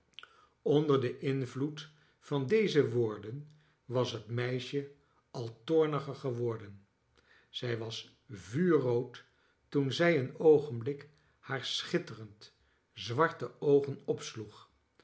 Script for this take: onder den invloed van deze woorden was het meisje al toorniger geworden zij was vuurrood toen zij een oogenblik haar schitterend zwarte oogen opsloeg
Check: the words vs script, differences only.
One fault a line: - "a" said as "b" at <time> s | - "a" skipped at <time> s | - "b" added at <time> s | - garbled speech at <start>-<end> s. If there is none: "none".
none